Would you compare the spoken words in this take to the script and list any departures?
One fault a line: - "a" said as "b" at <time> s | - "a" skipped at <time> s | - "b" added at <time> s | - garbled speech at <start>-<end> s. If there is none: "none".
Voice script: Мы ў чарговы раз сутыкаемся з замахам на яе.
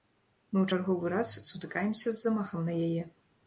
none